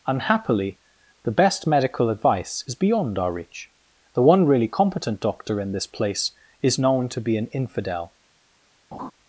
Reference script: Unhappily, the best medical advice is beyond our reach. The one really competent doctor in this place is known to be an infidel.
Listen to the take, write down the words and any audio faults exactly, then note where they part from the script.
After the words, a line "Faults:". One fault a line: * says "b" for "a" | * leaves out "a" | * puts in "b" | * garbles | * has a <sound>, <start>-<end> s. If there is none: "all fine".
Unhappily, the best medical advice is beyond our reach. The one really competent doctor in this place is known to be an infidel.
Faults:
* has a laugh, 8.9-9.1 s